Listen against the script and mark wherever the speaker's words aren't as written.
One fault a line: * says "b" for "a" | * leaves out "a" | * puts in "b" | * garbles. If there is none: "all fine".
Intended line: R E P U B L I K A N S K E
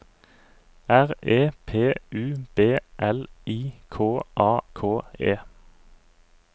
* leaves out "N S"